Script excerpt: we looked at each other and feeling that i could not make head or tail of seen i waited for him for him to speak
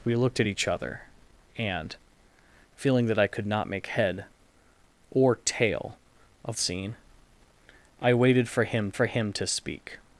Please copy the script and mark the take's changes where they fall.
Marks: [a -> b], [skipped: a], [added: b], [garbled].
we looked at each other and feeling that i could not make head or tail of seen i waited for him for him to speak